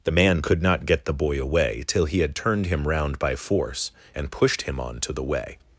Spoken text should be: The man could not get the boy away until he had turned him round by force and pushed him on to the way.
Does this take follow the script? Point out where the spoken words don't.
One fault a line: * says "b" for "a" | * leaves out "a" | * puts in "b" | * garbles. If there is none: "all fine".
* says "till" for "until"